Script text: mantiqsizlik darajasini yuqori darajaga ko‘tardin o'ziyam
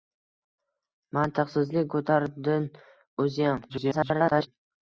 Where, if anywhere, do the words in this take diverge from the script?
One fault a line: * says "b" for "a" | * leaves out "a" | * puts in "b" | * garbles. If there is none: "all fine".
* leaves out "darajasini yuqori darajaga"
* garbles